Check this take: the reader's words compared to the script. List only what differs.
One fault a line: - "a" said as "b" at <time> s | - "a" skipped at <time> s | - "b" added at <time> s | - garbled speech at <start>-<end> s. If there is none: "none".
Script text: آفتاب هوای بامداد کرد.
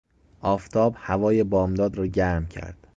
- "را گرم" added at 1.9 s